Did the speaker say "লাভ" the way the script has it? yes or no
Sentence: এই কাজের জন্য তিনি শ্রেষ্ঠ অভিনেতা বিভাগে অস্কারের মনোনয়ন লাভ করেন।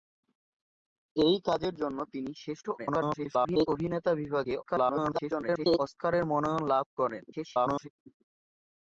yes